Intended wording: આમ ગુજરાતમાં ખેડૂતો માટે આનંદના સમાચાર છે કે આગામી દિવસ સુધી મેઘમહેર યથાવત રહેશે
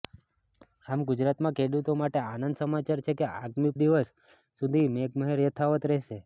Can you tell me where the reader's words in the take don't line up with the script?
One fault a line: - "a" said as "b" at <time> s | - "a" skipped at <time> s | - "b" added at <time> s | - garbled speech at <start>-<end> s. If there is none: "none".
none